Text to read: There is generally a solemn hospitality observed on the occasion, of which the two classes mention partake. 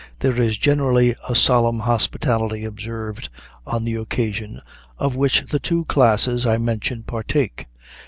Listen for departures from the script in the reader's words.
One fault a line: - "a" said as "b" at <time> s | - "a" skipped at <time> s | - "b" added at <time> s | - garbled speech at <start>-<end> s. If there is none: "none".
- "I" added at 6.4 s